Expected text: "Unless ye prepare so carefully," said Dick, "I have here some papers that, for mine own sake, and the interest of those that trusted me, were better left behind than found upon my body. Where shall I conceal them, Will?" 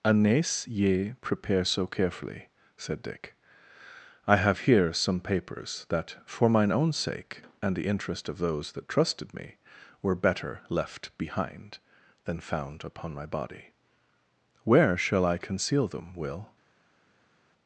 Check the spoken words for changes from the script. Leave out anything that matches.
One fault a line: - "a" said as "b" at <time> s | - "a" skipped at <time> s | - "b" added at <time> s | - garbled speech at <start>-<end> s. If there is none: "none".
none